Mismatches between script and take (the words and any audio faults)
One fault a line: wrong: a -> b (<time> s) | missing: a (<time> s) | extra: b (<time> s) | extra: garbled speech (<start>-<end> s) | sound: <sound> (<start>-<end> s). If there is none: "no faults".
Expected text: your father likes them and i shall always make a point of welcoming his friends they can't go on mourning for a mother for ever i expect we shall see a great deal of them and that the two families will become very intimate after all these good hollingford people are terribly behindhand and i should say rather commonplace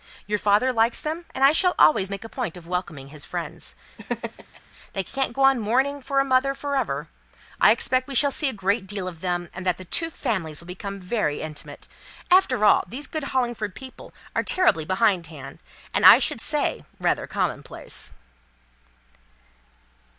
sound: laugh (4.0-4.6 s)